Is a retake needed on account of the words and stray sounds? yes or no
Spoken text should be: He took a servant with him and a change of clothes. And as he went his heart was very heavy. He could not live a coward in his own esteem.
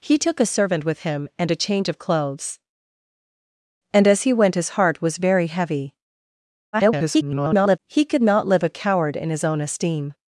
yes